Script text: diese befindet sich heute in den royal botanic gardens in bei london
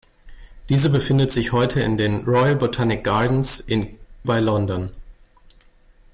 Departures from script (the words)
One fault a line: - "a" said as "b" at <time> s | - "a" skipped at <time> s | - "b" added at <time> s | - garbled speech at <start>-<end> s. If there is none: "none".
none